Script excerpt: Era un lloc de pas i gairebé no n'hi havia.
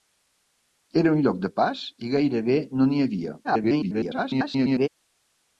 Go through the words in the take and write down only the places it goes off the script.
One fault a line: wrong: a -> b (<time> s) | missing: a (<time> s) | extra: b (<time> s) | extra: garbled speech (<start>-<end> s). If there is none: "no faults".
extra: garbled speech (3.4-4.9 s)